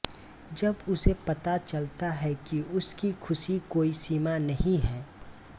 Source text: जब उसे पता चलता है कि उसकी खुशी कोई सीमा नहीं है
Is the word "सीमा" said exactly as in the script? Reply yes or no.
yes